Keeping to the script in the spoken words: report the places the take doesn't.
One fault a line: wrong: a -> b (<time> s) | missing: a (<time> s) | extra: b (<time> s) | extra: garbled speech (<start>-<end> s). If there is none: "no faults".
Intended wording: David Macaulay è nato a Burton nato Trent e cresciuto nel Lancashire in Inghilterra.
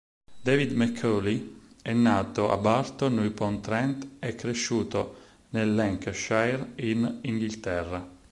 wrong: nato -> upon (3.2 s)